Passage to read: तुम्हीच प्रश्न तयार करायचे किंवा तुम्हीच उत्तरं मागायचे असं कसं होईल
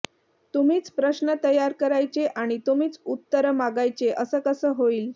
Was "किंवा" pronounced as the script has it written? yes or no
no